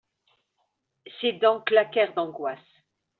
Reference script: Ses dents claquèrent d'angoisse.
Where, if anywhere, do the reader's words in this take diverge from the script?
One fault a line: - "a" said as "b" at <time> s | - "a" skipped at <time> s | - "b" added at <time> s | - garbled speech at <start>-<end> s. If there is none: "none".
none